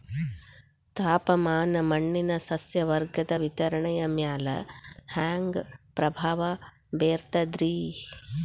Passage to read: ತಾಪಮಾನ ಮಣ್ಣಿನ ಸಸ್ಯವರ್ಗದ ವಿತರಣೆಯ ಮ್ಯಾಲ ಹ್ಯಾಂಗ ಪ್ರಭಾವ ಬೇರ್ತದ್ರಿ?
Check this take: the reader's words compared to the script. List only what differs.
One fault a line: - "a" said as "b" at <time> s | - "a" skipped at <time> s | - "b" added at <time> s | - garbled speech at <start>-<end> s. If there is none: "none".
none